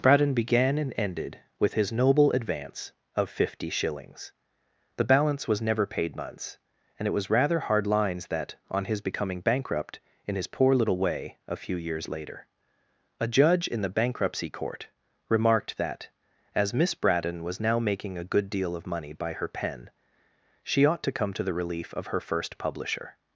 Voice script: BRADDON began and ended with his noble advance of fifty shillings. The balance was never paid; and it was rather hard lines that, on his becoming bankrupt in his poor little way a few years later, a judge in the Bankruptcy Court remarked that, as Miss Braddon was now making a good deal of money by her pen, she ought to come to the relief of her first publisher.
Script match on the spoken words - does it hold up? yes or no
no